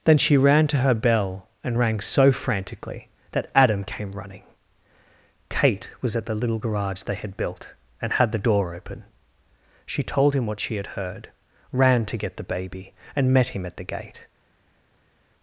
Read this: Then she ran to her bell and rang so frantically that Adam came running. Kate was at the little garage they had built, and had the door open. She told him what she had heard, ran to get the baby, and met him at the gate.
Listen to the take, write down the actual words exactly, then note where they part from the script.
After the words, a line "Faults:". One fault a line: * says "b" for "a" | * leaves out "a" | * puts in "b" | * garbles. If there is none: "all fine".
Then she ran to her bell and rang so frantically that Adam came running. Kate was at the little garage they had built, and had the door open. She told him what she had heard, ran to get the baby, and met him at the gate.
Faults:
all fine